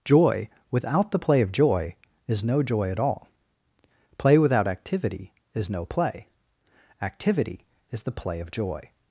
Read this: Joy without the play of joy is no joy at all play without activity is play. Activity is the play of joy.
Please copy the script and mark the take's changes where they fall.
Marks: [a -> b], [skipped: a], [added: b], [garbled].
Joy without the play of joy is no joy at all play without activity is [added: no] play. Activity is the play of joy.